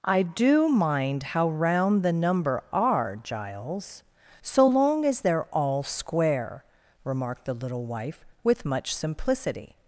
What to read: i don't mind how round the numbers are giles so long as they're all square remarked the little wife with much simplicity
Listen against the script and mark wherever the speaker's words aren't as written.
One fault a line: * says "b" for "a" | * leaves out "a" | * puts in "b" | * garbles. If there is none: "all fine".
* says "do" for "don't"
* says "number" for "numbers"